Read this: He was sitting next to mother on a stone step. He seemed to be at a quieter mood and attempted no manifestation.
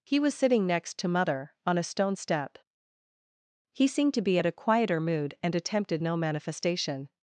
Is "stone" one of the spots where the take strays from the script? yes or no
no